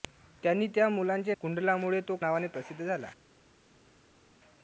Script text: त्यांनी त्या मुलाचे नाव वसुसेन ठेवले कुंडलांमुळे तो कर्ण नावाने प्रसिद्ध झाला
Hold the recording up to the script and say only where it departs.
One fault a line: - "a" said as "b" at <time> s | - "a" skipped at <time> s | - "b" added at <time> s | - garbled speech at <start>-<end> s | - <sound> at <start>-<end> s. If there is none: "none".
- "नाव वसुसेन ठेवले" skipped at 1.3 s
- "कर्ण" skipped at 2.2 s